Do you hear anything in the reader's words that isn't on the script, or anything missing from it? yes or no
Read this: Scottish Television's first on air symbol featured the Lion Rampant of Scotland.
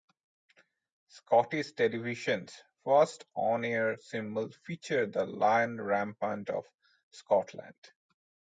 no